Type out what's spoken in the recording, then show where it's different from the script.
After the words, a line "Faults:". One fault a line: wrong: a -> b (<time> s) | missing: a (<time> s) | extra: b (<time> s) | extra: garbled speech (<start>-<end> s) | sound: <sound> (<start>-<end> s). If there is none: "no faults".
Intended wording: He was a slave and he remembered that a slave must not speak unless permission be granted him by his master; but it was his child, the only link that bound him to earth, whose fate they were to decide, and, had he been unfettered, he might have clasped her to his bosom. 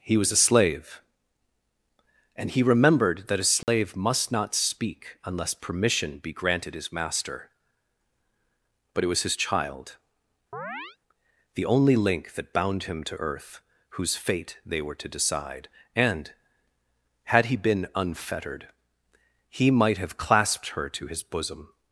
He was a slave and he remembered that a slave must not speak unless permission be granted his master; but it was his child, the only link that bound him to earth, whose fate they were to decide, and, had he been unfettered, he might have clasped her to his bosom.
Faults:
sound: dropout (3.6-3.7 s)
missing: him by (6.7 s)
sound: chirp (10.5-11.0 s)